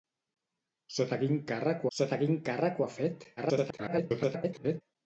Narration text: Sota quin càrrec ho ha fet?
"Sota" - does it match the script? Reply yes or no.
yes